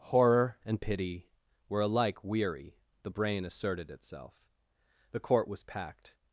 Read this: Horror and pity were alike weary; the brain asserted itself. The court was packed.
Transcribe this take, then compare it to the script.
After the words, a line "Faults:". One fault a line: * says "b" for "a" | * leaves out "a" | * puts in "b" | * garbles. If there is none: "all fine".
Horror and pity were alike weary; the brain asserted itself. The court was packed.
Faults:
all fine